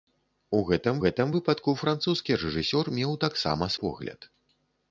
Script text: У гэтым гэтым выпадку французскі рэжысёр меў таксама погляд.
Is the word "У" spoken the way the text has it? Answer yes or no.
yes